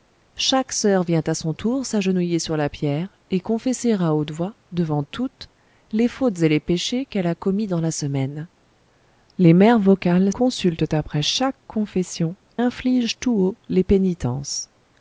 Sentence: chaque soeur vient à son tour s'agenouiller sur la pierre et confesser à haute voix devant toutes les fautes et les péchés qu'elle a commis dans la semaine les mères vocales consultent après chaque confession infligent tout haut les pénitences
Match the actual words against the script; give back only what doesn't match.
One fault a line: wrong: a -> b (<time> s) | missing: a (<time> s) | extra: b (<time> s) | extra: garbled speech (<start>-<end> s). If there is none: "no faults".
no faults